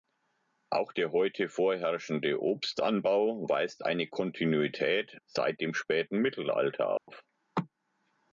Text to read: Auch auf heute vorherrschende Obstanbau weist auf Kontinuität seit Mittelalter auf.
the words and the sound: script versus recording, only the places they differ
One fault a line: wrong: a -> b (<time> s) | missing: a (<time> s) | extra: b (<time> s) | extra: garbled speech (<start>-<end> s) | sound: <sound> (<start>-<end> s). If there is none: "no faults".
wrong: auf -> der (0.9 s)
wrong: auf -> eine (3.8 s)
extra: dem späten (5.6 s)
sound: dropout (7.0-7.1 s)